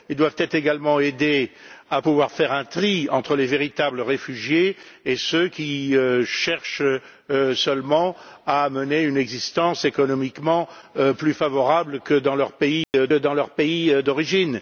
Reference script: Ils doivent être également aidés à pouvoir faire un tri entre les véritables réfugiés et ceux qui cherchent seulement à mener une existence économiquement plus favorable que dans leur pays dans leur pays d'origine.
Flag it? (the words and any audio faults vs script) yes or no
yes